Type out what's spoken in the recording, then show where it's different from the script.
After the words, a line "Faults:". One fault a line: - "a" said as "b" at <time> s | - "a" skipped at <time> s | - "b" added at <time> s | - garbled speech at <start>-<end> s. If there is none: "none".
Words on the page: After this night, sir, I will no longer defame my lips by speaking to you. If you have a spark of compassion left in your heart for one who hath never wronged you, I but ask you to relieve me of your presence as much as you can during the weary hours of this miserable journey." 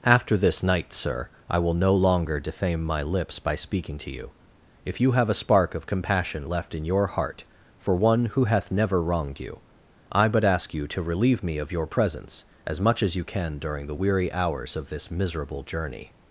After this night, sir, I will no longer defame my lips by speaking to you. If you have a spark of compassion left in your heart for one who hath never wronged you, I but ask you to relieve me of your presence as much as you can during the weary hours of this miserable journey."
Faults:
none